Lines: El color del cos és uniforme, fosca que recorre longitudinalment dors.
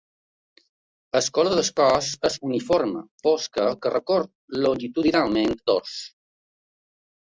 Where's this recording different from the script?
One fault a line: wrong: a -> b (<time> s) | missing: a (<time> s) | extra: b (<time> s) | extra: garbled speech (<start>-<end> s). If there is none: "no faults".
no faults